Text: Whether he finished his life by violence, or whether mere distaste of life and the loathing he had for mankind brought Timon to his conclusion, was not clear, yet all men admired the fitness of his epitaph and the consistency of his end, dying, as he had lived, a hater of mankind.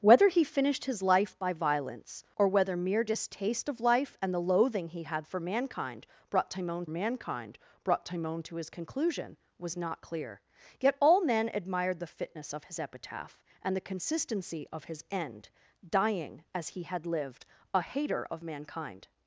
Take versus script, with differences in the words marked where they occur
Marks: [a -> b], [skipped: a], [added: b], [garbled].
Whether he finished his life by violence, or whether mere distaste of life and the loathing he had for mankind brought Timon [added: mankind brought Timon] to his conclusion, was not clear, yet all men admired the fitness of his epitaph and the consistency of his end, dying, as he had lived, a hater of mankind.